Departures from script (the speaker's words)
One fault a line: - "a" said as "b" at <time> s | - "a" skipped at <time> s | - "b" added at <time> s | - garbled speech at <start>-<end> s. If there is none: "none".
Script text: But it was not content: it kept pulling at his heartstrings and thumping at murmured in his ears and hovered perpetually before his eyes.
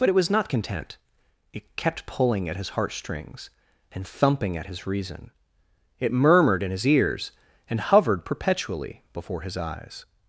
- "his reason it" added at 4.7 s